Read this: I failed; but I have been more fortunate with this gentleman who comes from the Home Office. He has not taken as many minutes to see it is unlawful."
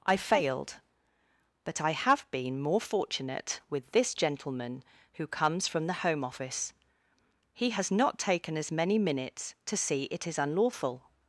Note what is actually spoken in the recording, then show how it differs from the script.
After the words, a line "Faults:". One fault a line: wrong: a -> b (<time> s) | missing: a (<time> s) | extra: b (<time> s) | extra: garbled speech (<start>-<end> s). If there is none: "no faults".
I failed; but I have been more fortunate with this gentleman who comes from the Home Office. He has not taken as many minutes to see it is unlawful."
Faults:
no faults